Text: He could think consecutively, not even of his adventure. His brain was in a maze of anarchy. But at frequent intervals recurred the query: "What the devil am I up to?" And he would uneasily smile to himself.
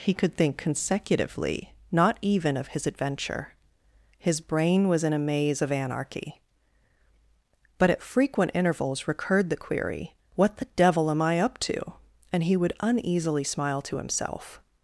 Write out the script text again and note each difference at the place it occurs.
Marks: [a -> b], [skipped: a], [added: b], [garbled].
He could think consecutively, not even of his adventure. His brain was in a maze of anarchy. But at frequent intervals recurred the query: "What the devil am I up to?" And he would uneasily smile to himself.